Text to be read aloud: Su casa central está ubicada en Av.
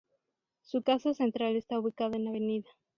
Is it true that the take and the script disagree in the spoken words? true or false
false